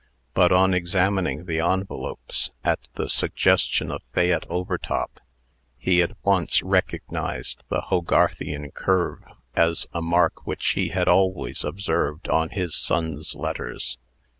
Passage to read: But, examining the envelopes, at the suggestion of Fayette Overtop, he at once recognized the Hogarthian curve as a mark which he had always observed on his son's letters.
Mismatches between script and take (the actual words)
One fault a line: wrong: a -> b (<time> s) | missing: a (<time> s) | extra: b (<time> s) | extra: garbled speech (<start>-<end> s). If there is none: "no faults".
extra: on (0.5 s)